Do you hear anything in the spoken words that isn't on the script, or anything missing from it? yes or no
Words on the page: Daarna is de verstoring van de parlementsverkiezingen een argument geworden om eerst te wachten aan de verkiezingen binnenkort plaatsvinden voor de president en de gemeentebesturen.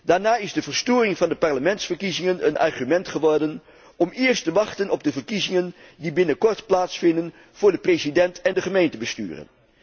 yes